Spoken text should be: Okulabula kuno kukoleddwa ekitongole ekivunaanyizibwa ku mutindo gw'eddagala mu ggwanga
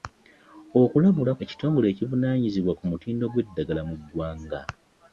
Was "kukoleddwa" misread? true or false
true